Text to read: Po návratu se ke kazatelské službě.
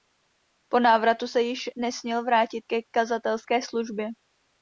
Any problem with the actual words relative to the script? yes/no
yes